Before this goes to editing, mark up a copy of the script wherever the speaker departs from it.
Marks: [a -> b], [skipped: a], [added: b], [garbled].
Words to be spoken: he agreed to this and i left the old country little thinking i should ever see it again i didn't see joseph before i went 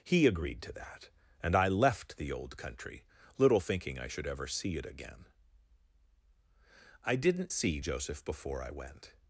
he agreed to [this -> that] and i left the old country little thinking i should ever see it again i didn't see joseph before i went